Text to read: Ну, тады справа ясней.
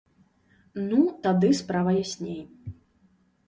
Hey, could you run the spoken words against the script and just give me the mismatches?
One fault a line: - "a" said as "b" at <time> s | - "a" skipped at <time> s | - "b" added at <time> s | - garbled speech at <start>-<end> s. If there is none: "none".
none